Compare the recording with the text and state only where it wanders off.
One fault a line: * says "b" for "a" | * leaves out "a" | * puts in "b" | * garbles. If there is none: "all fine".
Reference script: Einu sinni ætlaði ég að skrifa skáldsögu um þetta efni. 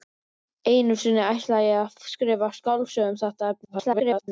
* garbles